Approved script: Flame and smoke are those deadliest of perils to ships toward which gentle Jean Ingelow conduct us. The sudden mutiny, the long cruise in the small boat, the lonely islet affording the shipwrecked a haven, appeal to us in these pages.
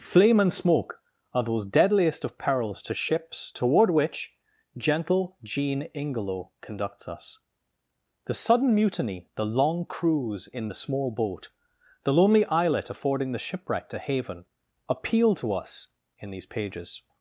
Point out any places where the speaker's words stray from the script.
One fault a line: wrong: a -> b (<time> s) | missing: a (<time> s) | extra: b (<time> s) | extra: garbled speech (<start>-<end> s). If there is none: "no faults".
wrong: conduct -> conducts (6.6 s)